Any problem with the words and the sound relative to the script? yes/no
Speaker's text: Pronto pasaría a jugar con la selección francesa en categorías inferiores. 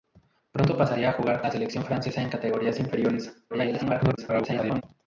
yes